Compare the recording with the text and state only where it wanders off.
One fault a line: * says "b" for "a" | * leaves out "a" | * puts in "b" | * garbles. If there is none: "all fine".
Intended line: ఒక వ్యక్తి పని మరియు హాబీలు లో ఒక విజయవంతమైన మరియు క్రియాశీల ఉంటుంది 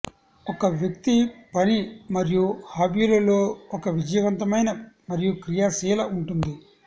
all fine